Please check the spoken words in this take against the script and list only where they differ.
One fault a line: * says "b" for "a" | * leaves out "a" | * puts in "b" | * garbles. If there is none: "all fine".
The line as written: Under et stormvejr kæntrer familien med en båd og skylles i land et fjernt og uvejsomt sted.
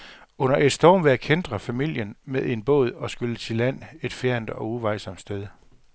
all fine